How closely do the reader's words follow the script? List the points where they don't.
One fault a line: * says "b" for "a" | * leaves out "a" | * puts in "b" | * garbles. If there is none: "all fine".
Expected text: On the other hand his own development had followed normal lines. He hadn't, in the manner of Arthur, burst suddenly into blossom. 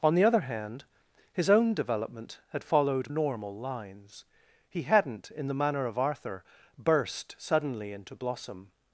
all fine